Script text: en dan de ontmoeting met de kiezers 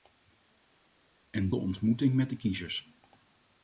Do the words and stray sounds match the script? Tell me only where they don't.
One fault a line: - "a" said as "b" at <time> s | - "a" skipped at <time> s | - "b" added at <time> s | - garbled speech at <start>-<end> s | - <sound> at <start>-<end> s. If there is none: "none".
- "dan" skipped at 1.5 s